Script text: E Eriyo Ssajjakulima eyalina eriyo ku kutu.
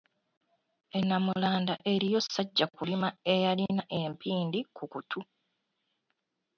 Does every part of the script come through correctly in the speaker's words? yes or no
no